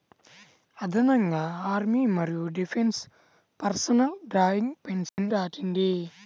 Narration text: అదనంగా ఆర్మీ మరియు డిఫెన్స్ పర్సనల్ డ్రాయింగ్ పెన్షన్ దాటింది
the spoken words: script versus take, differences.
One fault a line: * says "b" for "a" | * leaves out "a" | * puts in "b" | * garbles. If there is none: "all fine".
all fine